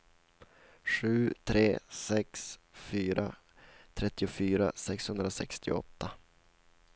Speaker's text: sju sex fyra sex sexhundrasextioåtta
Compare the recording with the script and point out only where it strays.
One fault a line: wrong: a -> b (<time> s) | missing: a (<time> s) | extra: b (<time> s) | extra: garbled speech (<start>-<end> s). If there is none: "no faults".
extra: tre (1.4 s)
wrong: sex -> trettiofyra (3.9 s)